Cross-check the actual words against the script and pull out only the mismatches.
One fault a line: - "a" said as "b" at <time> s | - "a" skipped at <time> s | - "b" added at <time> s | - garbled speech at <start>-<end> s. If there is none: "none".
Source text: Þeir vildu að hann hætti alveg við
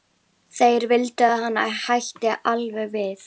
none